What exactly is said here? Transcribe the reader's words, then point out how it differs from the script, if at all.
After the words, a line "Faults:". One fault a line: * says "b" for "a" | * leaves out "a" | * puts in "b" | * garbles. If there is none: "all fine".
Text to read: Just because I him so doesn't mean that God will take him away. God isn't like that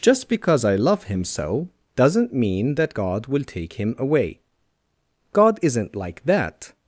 Just because I love him so doesn't mean that God will take him away. God isn't like that
Faults:
* puts in "love"